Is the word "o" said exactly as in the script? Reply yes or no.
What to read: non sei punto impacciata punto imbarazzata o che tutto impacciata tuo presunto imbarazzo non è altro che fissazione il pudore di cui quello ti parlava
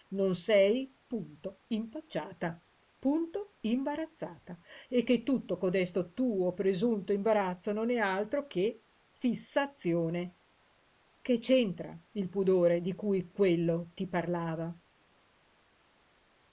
no